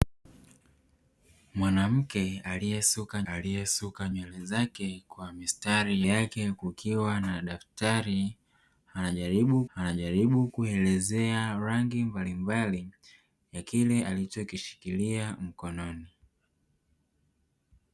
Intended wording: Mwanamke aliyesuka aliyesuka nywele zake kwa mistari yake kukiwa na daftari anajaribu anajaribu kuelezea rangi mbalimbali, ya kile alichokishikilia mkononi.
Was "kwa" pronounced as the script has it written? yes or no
yes